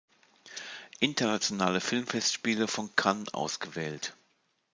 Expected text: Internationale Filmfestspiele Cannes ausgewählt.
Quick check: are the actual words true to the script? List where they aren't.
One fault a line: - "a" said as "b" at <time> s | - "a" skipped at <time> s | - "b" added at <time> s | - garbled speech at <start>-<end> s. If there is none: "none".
- "von" added at 2.7 s